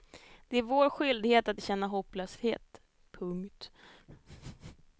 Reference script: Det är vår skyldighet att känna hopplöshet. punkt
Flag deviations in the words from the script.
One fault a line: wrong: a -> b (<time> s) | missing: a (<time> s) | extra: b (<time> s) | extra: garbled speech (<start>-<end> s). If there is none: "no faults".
no faults